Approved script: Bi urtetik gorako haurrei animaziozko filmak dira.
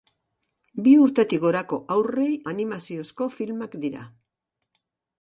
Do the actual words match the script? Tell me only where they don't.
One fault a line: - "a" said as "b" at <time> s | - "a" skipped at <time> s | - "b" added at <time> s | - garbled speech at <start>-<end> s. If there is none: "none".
none